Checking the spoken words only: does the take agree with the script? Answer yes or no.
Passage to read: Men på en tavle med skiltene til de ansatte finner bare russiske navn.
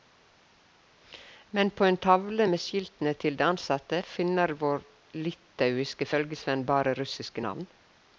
no